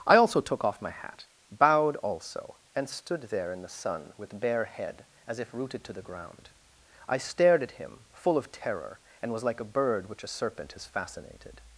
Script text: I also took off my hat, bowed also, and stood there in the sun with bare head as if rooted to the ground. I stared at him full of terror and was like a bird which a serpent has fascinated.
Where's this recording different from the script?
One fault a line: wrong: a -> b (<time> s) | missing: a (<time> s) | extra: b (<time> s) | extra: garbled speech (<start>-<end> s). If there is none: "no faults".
no faults